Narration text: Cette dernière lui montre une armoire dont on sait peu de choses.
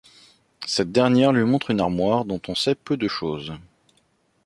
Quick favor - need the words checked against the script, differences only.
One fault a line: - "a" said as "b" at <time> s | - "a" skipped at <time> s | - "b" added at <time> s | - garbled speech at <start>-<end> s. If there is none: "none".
none